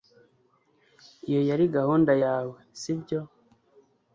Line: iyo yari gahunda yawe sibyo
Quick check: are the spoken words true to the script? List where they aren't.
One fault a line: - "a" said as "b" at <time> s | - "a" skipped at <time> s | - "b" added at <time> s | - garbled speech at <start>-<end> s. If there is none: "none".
none